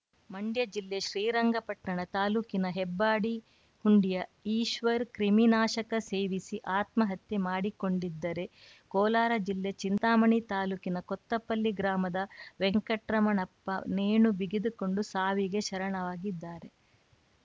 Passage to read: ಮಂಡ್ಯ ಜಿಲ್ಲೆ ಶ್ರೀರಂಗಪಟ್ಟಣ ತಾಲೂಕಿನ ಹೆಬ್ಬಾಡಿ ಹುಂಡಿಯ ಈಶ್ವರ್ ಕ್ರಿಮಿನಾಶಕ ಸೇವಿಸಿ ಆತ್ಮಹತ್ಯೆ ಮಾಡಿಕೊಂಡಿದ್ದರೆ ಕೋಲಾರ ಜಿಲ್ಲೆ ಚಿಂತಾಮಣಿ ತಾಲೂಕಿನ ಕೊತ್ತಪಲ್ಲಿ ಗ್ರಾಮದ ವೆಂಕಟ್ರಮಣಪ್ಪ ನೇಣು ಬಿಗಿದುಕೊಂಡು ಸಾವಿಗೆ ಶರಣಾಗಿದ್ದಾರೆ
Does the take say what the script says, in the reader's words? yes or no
yes